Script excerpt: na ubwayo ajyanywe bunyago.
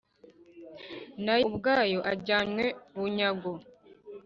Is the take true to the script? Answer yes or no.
yes